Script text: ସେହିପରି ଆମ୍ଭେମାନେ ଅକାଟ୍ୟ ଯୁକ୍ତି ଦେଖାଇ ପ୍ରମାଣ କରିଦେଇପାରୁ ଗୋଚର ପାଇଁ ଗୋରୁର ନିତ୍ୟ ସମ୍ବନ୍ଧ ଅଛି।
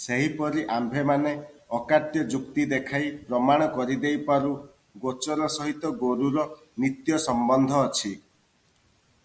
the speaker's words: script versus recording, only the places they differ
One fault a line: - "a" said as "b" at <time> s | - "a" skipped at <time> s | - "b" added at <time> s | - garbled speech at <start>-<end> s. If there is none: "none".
- "ପାଇଁ" said as "ସହିତ" at 5.6 s